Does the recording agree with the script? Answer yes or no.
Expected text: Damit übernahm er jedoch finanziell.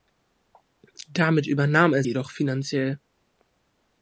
yes